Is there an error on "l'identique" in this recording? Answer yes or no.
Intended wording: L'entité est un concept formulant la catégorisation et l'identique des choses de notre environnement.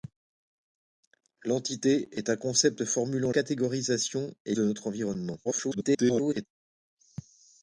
yes